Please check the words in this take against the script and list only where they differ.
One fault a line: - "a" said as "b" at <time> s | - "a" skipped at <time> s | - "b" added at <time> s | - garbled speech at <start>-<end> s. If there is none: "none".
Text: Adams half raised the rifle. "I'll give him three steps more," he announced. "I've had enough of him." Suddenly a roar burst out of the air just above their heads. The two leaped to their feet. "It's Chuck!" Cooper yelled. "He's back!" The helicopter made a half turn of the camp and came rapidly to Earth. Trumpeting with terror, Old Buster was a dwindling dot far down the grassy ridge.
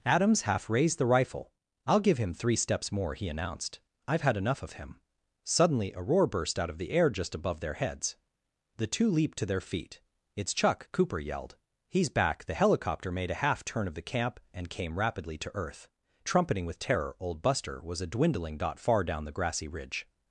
none